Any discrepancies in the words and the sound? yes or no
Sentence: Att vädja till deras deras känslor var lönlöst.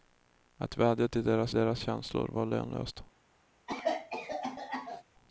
yes